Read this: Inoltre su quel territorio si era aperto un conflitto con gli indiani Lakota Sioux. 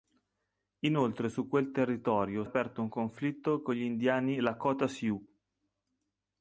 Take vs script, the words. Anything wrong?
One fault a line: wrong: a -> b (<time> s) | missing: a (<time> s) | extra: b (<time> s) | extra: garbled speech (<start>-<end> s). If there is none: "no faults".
missing: si era (2.4 s)